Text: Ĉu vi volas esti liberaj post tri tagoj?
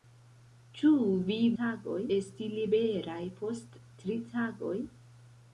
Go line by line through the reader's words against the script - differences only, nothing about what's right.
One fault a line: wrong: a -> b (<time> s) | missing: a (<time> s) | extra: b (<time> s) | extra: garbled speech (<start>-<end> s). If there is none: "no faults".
wrong: volas -> tagoj (1.6 s)